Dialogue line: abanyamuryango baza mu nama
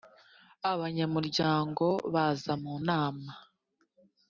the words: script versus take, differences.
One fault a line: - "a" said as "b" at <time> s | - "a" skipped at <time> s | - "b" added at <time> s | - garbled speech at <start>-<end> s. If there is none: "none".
none